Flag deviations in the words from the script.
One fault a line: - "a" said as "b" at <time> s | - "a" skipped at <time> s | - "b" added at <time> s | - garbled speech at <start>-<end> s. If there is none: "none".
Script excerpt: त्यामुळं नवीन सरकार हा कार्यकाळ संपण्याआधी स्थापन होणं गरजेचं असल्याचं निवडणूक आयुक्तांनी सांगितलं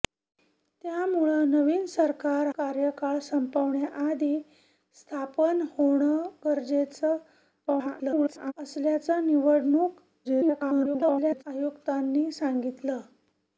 - "हा" skipped at 2.5 s
- garbled speech at 7.7-8.5 s
- garbled speech at 10.2-11.4 s